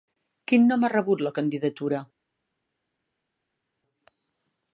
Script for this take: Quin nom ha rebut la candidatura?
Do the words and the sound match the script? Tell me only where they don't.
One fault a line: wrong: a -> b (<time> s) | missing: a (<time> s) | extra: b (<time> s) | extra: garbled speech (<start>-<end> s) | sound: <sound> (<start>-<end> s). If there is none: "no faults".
no faults